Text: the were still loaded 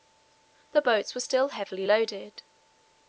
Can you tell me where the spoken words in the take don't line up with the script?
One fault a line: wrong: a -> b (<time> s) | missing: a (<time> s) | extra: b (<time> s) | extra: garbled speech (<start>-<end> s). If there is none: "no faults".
extra: boats (0.8 s)
extra: heavily (1.5 s)